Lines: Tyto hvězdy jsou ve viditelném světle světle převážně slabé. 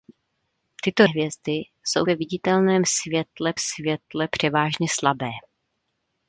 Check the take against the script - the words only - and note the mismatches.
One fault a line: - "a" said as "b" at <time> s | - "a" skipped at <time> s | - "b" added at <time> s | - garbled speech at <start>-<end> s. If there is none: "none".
none